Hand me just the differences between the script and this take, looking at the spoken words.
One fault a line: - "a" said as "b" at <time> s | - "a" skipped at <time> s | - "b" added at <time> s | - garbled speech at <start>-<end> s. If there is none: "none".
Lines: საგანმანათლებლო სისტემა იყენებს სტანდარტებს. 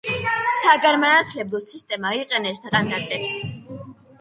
none